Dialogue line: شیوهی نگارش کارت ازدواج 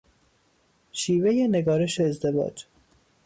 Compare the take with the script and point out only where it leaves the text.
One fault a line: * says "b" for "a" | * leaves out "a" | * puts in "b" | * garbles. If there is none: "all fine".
* leaves out "کارت"